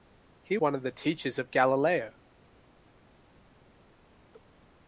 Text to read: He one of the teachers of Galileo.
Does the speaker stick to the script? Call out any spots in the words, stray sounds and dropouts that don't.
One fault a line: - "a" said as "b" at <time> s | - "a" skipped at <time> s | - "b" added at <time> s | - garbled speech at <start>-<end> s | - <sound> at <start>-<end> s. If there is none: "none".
none